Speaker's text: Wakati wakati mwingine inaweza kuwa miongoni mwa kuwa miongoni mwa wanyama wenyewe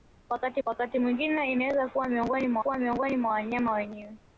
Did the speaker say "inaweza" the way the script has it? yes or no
yes